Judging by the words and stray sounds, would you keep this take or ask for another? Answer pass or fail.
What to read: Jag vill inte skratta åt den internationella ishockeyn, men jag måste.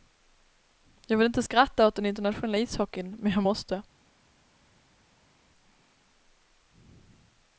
pass